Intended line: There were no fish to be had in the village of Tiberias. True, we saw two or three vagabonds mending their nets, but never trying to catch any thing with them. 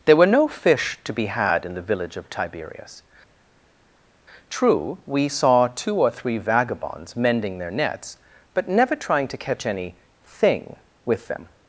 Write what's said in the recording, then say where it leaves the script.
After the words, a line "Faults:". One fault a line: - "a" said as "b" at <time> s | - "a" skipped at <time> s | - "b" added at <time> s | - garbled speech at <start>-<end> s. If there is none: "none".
There were no fish to be had in the village of Tiberias. True, we saw two or three vagabonds mending their nets, but never trying to catch any thing with them.
Faults:
none